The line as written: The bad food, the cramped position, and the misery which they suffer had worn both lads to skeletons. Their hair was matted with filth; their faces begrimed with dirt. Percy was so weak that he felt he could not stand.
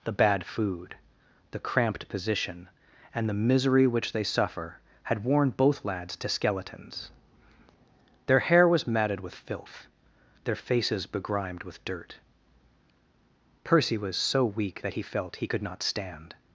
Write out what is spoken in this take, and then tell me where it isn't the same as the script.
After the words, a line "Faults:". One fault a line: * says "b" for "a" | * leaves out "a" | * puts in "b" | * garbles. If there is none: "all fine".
The bad food, the cramped position, and the misery which they suffer had worn both lads to skeletons. Their hair was matted with filth; their faces begrimed with dirt. Percy was so weak that he felt he could not stand.
Faults:
all fine